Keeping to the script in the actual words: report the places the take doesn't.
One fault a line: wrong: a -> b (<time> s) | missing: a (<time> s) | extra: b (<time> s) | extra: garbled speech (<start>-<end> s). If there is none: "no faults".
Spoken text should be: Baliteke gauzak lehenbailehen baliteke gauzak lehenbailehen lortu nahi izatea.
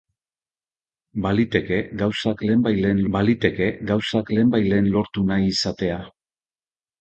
no faults